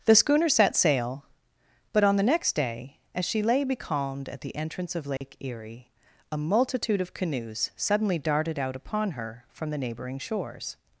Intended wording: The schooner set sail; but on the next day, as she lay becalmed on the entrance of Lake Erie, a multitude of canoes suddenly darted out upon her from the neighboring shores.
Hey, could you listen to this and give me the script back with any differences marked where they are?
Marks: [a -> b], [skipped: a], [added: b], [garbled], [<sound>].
The schooner set sail; but on the next day, as she lay becalmed [on -> at] the entrance of Lake [dropout] Erie, a multitude of canoes suddenly darted out upon her from the neighboring shores.